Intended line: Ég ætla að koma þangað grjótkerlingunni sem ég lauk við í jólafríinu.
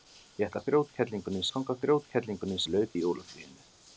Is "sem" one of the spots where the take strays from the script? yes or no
yes